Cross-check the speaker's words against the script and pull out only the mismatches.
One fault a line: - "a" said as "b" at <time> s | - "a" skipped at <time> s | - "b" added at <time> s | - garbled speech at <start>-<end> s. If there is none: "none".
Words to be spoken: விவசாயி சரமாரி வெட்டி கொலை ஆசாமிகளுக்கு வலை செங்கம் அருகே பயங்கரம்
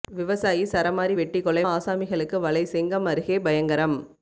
none